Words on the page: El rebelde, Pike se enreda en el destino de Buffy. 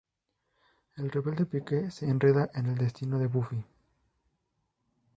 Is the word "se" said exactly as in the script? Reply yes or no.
yes